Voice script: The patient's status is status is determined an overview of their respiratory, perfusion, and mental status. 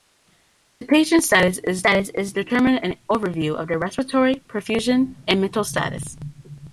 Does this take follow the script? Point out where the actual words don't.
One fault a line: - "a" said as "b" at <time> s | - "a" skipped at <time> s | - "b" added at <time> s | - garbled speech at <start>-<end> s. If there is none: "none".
none